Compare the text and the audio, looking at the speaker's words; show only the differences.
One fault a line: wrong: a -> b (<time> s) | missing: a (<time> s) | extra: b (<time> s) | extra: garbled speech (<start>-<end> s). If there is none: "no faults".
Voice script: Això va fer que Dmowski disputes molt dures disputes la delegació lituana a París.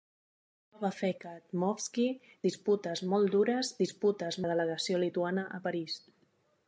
no faults